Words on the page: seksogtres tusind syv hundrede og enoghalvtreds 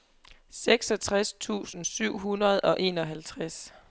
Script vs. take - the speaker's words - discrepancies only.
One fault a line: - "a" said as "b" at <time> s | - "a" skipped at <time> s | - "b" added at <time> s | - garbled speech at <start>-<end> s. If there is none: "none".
none